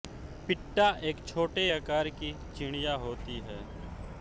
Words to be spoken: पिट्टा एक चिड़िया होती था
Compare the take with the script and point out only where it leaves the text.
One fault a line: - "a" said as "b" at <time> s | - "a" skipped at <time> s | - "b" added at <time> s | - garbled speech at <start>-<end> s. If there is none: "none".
- "छोटे आकार की" added at 1.3 s
- "था" said as "है" at 3.4 s